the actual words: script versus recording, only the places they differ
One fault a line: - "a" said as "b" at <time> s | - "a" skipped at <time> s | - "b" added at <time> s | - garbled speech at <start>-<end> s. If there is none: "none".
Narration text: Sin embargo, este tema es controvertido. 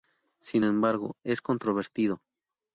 - "este tema" skipped at 1.2 s